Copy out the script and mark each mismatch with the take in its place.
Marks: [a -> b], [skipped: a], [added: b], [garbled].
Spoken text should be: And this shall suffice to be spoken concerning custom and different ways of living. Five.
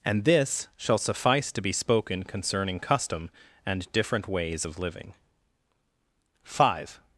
And this shall suffice to be spoken concerning custom and different ways of living. Five.